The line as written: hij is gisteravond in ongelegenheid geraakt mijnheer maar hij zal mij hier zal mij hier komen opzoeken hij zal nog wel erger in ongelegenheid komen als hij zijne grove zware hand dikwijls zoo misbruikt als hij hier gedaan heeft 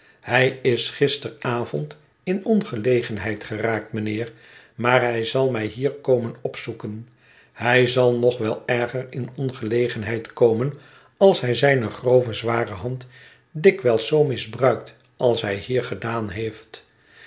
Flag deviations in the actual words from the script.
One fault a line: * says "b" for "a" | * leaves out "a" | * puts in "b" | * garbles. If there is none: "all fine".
* leaves out "zal mij hier"